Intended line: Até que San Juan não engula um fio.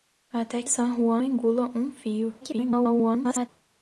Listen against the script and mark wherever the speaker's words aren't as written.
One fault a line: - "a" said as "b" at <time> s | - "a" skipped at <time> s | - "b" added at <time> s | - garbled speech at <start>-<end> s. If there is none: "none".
- "que" skipped at 0.6 s
- "não" skipped at 1.2 s
- garbled speech at 2.4-3.5 s